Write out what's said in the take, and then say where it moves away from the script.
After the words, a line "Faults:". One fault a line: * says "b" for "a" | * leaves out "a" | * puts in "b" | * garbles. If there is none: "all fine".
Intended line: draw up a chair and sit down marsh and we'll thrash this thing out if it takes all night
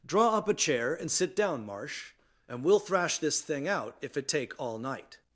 draw up a chair and sit down marsh and we'll thrash this thing out if it take all night
Faults:
* says "take" for "takes"